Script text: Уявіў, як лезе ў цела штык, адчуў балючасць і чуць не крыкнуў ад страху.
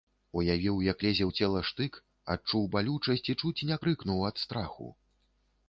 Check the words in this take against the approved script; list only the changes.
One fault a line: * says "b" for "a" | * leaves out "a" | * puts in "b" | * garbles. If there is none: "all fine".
all fine